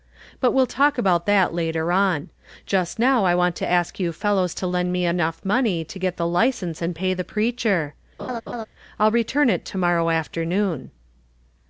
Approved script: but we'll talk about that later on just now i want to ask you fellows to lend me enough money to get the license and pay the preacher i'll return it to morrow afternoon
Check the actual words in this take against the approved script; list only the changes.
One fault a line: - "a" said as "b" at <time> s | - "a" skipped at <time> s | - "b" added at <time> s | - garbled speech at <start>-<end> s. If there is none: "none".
none